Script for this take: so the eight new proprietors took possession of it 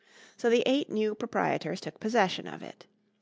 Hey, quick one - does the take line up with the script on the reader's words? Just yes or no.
yes